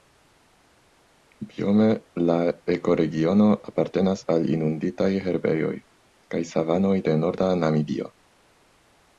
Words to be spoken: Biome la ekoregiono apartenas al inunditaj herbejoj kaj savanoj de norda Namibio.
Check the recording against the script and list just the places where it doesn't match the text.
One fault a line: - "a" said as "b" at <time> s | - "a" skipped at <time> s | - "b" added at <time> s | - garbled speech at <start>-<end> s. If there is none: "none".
none